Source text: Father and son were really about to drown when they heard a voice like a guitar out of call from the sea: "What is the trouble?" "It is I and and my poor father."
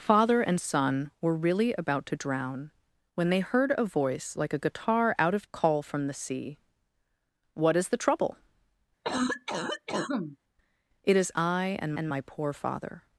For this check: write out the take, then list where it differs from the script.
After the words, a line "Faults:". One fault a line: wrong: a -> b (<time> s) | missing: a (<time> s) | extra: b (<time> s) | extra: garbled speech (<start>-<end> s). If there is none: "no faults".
Father and son were really about to drown when they heard a voice like a guitar out of call from the sea: "What is the trouble?" "It is I and and my poor father."
Faults:
no faults